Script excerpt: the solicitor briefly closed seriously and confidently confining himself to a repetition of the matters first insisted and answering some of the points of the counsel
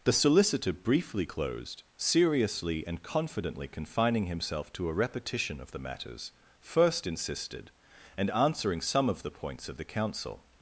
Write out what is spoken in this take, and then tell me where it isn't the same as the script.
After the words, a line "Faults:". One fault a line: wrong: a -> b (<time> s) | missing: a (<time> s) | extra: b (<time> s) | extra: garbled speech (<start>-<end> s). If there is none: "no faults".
the solicitor briefly closed seriously and confidently confining himself to a repetition of the matters first insisted and answering some of the points of the counsel
Faults:
no faults